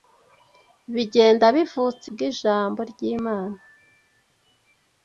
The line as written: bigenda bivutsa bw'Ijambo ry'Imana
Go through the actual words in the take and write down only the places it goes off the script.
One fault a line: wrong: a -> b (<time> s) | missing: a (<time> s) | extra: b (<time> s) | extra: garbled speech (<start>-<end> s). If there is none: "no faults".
no faults